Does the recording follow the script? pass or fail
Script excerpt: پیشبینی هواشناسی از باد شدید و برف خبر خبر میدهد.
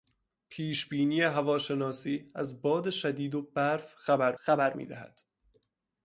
pass